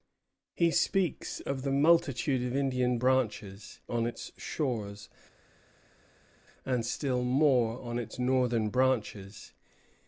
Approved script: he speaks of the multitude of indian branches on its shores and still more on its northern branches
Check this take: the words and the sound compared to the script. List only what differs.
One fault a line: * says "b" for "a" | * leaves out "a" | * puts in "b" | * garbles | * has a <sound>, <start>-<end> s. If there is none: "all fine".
all fine